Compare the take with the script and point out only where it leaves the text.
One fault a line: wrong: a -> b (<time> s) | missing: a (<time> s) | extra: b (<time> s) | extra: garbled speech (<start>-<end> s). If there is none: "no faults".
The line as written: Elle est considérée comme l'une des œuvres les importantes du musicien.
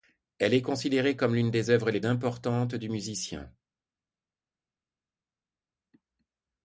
no faults